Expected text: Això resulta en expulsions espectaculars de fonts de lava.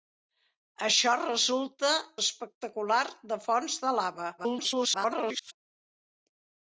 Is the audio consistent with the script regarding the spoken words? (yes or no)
no